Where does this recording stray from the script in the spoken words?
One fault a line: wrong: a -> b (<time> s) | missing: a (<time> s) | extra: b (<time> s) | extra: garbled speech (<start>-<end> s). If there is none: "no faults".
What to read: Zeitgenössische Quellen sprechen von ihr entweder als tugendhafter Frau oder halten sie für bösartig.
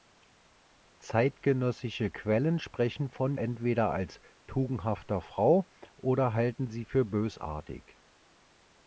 missing: ihr (3.4 s)